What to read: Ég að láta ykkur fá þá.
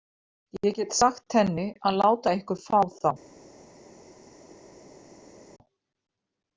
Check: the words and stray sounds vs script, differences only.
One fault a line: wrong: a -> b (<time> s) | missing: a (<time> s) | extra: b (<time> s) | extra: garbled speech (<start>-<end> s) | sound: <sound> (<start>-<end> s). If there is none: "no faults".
extra: get sagt henni (0.8 s)